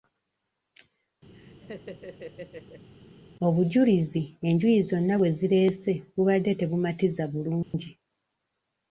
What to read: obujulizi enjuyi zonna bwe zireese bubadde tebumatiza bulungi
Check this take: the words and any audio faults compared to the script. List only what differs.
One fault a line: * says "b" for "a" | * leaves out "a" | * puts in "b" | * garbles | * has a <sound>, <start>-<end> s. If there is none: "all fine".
* has a laugh, 1.3-2.9 s
* has a dropout, 7.6-7.7 s